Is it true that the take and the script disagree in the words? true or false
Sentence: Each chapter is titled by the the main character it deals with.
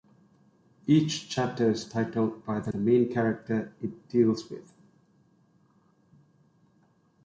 false